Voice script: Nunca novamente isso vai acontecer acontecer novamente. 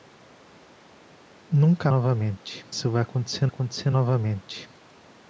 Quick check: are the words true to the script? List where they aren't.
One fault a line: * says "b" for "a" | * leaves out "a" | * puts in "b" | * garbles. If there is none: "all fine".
all fine